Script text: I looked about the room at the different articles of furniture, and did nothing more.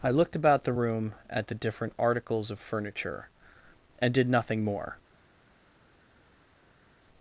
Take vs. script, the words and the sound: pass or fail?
pass